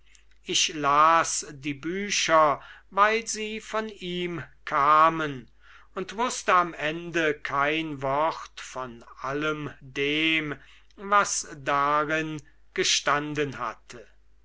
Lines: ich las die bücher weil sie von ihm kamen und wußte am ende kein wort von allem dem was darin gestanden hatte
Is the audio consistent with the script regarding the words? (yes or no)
yes